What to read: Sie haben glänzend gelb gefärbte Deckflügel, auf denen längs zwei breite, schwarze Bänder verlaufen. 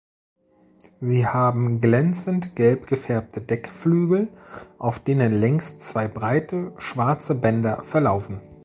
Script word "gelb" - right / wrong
right